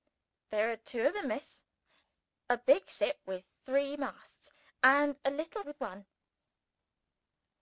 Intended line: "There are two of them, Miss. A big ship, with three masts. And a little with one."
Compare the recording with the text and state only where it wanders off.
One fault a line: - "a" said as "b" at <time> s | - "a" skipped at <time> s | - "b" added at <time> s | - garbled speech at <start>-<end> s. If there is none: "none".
none